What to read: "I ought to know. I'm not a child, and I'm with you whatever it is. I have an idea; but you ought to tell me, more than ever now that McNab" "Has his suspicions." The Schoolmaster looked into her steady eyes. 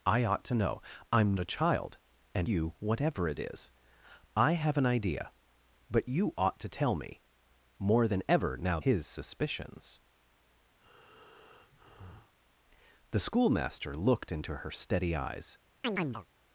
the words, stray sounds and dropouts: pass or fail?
fail